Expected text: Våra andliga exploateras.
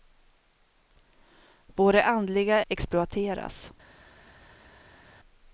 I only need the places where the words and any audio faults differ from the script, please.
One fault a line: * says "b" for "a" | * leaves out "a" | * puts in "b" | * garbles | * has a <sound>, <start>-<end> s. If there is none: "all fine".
all fine